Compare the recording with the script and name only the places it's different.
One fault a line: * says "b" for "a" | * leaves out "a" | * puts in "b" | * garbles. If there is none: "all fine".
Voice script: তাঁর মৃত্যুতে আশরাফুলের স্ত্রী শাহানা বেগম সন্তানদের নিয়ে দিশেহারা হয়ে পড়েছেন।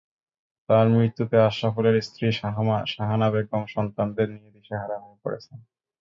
all fine